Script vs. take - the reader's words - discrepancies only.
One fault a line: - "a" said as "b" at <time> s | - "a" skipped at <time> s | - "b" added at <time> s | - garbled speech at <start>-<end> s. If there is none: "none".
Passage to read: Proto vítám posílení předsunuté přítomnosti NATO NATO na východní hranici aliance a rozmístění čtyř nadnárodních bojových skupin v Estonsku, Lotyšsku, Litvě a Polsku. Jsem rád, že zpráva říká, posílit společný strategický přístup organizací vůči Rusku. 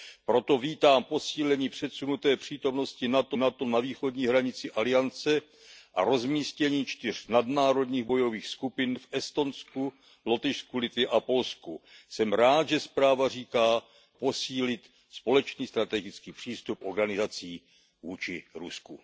none